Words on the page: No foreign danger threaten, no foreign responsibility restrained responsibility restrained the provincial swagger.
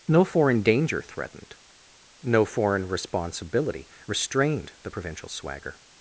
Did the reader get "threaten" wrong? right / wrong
wrong